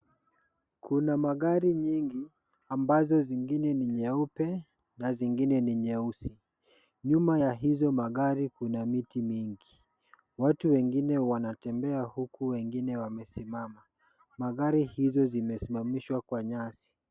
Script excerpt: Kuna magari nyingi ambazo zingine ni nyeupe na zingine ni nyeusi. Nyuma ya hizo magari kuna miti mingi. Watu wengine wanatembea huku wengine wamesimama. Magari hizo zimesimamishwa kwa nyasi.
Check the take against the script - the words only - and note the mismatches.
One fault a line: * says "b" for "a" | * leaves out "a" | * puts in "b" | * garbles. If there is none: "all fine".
all fine